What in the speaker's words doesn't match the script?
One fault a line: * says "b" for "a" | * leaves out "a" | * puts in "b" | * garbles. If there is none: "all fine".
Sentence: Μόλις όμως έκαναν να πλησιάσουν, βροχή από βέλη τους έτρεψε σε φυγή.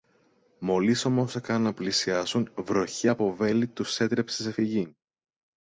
all fine